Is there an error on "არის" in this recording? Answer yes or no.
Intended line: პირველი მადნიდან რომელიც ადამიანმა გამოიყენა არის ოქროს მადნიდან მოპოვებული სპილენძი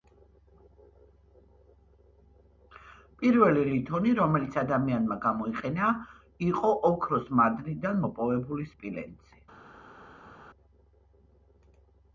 yes